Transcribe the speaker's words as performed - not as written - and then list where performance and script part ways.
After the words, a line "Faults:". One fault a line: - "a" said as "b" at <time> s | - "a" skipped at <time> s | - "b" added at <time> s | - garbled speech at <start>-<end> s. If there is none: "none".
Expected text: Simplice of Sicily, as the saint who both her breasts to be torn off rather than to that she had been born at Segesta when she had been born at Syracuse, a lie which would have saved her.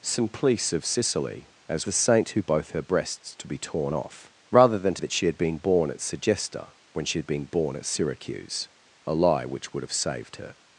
Simplice of Sicily, as the saint who both her breasts to be torn off rather than to that she had been born at Segesta when she had been born at Syracuse, a lie which would have saved her.
Faults:
none